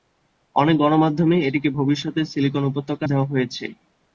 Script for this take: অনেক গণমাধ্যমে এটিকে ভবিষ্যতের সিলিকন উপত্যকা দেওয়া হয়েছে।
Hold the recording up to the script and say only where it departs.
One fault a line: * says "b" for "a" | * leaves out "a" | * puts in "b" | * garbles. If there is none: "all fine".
all fine